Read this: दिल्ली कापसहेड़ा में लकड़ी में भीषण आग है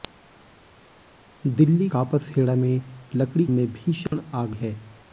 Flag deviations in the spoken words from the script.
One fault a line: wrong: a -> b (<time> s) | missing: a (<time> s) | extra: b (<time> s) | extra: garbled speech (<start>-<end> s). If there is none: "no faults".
no faults